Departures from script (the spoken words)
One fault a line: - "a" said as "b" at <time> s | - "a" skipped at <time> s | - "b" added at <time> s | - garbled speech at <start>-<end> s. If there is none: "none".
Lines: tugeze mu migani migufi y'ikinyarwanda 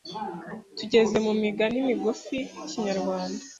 none